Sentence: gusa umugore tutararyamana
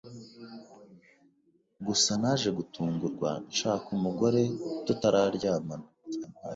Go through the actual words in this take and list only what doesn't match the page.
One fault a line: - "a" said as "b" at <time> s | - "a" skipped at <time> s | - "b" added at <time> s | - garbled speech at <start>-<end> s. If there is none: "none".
- "naje gutungurwa nshaka" added at 2.2 s